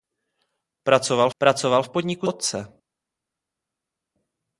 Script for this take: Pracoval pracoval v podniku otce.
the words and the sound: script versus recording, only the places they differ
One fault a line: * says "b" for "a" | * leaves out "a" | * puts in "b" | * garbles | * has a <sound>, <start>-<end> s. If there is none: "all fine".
all fine